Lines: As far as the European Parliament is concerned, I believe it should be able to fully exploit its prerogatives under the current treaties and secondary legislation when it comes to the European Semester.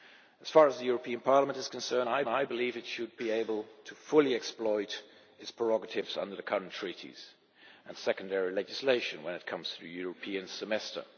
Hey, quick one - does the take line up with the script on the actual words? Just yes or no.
no